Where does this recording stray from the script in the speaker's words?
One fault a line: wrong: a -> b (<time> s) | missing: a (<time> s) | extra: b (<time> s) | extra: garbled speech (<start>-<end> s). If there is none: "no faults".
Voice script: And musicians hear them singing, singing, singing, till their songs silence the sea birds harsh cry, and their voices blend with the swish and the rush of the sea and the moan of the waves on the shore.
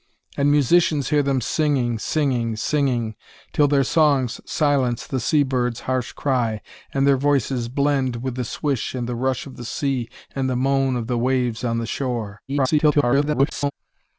extra: garbled speech (12.5-13.7 s)